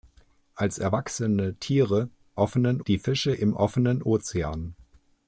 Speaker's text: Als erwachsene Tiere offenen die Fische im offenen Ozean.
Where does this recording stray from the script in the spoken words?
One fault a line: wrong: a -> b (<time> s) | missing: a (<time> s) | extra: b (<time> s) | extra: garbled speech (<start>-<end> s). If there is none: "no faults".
no faults